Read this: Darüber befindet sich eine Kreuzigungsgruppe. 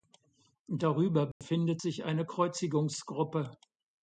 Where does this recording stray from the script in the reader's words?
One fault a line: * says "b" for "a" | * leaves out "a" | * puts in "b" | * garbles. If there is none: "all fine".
all fine